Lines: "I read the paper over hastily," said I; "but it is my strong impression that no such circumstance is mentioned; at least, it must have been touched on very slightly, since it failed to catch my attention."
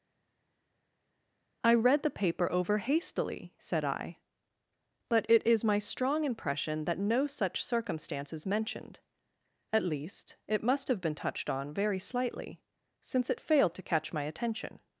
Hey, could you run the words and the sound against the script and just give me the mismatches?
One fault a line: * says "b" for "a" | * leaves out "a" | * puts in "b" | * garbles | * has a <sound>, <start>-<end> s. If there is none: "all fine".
all fine